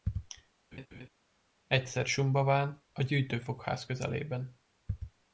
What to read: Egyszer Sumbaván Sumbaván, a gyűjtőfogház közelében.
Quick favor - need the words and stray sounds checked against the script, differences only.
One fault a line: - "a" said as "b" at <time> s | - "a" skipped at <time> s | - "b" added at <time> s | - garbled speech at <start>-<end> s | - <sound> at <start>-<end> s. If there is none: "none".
- laugh at 0.7-1.1 s
- "Sumbaván" skipped at 2.8 s